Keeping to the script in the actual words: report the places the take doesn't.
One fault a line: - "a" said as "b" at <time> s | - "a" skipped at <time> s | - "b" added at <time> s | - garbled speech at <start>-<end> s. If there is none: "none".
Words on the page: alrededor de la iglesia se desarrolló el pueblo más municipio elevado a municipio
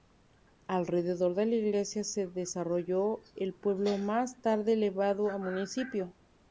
- "municipio" said as "tarde" at 4.4 s